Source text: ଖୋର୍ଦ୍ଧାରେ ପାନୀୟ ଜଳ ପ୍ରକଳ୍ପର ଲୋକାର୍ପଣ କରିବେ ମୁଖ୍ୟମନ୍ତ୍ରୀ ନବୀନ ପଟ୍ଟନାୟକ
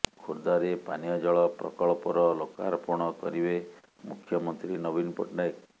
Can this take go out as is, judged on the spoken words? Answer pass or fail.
pass